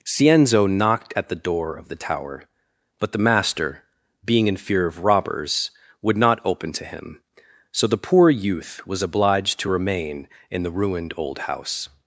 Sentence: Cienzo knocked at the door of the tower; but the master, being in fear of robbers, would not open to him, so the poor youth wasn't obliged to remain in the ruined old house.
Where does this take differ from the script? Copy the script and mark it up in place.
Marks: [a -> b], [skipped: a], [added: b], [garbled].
Cienzo knocked at the door of the tower; but the master, being in fear of robbers, would not open to him, so the poor youth [wasn't -> was] obliged to remain in the ruined old house.